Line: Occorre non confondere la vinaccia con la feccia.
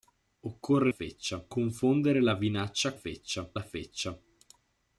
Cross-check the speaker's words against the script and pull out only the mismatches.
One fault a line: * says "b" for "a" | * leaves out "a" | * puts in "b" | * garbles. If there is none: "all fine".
* says "feccia" for "non"
* says "feccia" for "con"